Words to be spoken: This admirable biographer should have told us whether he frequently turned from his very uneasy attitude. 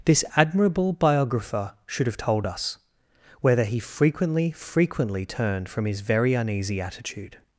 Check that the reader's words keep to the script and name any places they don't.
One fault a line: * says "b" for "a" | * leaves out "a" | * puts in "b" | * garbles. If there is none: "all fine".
* puts in "frequently"